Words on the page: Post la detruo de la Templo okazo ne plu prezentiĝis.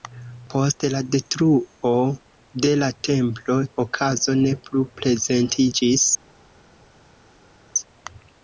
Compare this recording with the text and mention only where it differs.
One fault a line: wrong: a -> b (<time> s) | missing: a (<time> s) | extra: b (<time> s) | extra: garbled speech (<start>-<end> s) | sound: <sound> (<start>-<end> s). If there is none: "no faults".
no faults